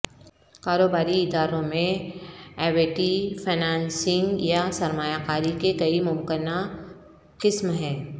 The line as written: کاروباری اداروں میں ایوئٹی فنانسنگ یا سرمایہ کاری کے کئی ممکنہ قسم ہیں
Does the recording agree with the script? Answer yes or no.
yes